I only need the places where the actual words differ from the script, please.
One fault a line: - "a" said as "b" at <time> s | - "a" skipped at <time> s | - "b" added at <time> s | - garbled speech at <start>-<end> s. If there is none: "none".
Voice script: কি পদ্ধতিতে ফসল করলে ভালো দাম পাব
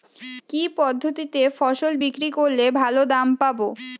- "বিক্রি" added at 2.0 s